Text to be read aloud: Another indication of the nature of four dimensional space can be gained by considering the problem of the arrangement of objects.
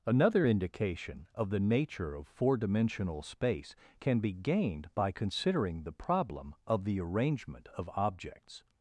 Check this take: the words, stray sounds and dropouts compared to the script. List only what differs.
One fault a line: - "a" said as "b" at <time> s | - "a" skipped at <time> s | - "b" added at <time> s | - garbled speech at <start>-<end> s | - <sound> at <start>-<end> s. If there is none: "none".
none